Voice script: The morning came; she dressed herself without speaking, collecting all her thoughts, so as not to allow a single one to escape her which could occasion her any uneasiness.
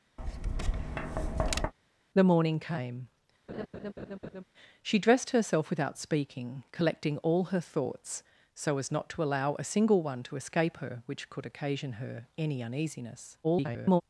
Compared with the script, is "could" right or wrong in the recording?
right